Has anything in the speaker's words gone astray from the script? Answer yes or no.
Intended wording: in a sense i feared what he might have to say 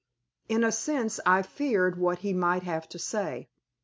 no